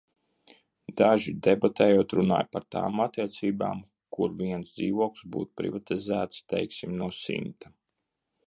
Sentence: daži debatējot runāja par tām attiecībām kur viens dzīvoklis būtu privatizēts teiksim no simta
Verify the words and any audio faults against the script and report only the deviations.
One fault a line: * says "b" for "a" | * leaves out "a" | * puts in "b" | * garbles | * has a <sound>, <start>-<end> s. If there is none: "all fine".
all fine